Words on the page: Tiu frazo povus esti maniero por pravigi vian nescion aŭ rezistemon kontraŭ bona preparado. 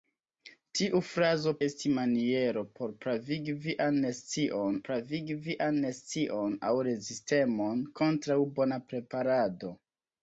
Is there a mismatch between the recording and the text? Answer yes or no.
yes